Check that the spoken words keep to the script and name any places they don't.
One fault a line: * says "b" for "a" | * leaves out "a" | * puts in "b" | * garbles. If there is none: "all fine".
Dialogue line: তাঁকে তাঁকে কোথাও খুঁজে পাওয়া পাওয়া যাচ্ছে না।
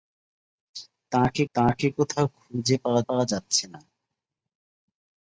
all fine